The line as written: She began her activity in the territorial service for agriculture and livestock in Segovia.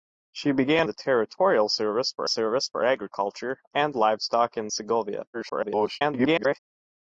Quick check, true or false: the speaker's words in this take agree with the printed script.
false